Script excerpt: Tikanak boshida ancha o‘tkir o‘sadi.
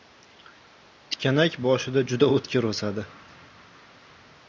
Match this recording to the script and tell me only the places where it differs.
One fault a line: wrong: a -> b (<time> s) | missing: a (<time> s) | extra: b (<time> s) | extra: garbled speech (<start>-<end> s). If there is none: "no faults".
wrong: ancha -> juda (2.1 s)